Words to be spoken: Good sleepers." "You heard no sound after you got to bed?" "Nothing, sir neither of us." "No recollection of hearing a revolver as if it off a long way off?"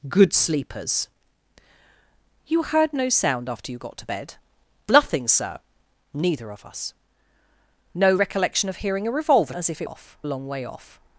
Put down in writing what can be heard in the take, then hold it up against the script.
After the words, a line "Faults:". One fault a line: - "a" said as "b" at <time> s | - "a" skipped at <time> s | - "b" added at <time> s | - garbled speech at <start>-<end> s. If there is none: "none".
Good sleepers." "You heard no sound after you got to bed?" "Nothing, sir neither of us." "No recollection of hearing a revolver as if it off a long way off?"
Faults:
none